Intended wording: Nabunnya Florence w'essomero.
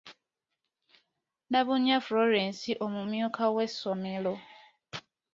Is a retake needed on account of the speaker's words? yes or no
yes